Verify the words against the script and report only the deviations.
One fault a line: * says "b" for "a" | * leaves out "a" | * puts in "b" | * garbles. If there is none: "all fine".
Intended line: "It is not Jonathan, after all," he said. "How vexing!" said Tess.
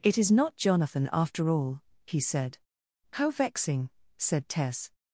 all fine